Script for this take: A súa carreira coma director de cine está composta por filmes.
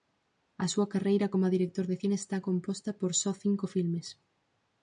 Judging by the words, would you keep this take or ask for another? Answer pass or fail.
fail